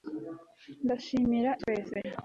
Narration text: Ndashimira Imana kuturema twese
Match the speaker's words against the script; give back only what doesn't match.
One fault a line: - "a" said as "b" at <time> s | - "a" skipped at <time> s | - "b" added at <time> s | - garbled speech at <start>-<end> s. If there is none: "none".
- "Imana kuturema" skipped at 1.5 s